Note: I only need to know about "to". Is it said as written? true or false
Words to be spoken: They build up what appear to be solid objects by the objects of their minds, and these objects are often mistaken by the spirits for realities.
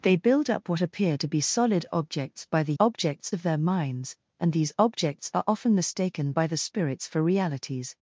true